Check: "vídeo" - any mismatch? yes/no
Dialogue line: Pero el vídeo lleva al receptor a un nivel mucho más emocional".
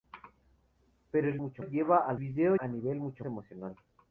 yes